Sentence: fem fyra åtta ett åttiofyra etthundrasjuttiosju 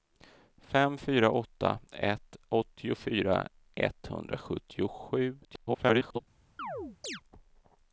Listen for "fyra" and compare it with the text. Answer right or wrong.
right